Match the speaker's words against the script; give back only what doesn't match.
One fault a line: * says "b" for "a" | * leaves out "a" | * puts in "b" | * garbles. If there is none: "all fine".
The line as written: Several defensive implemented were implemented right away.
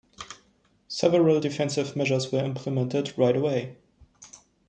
* says "measures" for "implemented"